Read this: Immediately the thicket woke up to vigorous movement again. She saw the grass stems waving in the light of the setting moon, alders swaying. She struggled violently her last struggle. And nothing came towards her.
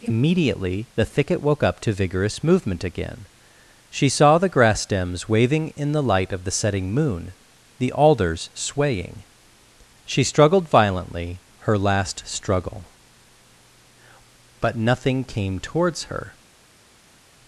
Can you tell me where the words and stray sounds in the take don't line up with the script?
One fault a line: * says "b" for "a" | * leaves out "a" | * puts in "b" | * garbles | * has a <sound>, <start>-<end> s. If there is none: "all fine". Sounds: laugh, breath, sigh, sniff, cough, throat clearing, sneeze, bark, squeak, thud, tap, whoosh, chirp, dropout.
* puts in "the"
* says "But" for "And"